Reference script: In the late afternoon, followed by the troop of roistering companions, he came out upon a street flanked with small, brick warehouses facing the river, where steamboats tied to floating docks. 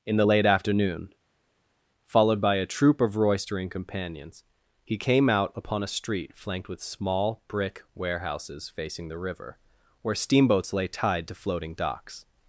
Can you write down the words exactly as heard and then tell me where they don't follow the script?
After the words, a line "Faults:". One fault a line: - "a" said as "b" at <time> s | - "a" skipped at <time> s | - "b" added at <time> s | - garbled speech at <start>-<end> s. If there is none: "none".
In the late afternoon, followed by a troop of roistering companions, he came out upon a street flanked with small, brick warehouses facing the river, where steamboats lay tied to floating docks.
Faults:
- "the" said as "a" at 2.5 s
- "lay" added at 10.7 s